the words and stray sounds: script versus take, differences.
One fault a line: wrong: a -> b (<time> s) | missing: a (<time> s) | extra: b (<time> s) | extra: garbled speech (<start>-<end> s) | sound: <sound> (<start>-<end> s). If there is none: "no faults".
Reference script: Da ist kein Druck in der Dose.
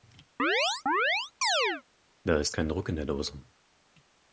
sound: chirp (0.4-1.8 s)